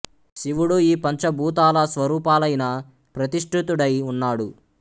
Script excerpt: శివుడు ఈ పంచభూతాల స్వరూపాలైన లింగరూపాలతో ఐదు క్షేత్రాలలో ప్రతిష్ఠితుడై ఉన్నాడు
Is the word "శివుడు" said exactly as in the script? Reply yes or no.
yes